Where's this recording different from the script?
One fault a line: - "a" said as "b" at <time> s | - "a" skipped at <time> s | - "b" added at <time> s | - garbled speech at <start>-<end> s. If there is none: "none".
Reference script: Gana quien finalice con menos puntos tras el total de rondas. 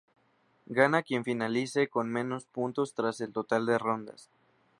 none